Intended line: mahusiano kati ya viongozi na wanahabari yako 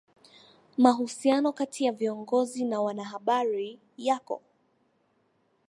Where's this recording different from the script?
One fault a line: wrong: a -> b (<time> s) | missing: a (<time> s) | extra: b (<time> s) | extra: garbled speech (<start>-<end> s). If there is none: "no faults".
no faults